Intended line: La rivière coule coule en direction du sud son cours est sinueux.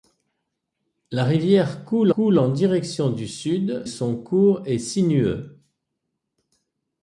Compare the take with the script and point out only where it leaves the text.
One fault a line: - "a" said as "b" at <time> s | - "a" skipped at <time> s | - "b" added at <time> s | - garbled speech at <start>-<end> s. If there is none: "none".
none